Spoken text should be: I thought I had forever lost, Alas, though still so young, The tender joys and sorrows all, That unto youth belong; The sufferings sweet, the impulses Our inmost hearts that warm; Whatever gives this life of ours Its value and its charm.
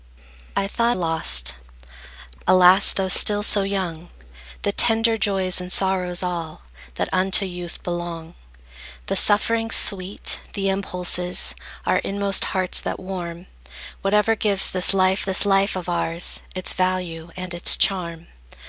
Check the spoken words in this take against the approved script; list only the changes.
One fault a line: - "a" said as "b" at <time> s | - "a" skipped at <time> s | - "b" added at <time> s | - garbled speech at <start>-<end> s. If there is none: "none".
- "I had forever" skipped at 1.0 s
- "this life" added at 15.2 s